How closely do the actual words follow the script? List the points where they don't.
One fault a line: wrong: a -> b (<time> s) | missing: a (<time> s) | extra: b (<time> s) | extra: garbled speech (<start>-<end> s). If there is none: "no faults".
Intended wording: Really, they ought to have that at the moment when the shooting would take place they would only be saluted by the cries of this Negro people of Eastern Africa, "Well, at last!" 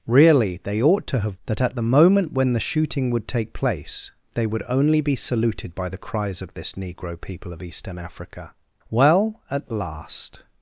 no faults